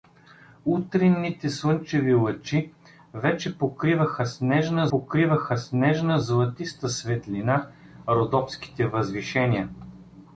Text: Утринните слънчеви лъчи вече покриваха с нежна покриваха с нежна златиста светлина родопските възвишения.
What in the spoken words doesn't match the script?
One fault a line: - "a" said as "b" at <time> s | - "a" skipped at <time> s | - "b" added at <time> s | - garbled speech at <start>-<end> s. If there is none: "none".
none